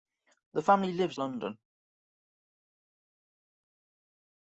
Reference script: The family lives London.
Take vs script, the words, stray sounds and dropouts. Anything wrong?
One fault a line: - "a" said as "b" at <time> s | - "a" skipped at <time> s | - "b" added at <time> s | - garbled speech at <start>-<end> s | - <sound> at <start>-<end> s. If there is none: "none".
none